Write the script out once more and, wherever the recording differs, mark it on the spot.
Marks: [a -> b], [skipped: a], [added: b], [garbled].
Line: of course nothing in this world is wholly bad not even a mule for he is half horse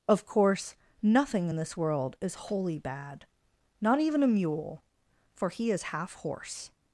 of course nothing in this world is wholly bad not even a mule for he is half horse